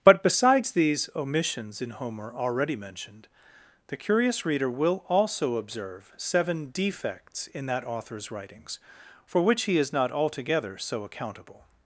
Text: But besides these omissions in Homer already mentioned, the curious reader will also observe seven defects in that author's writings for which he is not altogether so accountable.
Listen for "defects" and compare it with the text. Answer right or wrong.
right